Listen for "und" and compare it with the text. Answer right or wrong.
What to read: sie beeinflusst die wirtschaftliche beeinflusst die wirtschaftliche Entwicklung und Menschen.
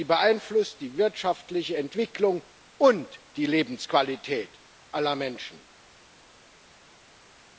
wrong